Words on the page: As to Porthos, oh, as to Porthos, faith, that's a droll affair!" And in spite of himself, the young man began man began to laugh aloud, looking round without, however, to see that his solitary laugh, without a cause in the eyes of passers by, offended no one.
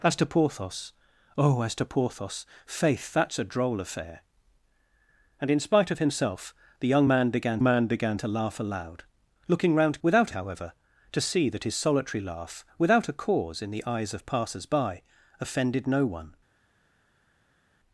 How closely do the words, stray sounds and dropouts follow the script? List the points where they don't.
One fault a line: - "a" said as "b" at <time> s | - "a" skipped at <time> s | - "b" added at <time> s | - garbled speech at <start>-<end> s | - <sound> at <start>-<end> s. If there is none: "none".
none